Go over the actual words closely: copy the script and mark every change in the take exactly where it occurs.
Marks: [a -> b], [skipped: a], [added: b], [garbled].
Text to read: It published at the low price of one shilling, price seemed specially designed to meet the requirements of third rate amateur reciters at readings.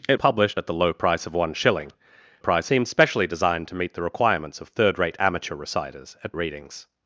It published at the low price of one shilling, price seemed specially designed to meet the requirements of third rate amateur reciters at readings.